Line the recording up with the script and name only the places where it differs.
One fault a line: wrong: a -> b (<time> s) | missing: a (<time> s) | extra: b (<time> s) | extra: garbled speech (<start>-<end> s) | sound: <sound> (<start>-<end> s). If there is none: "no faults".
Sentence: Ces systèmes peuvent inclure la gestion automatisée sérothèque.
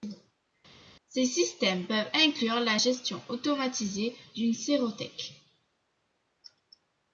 extra: d'une (4.3 s)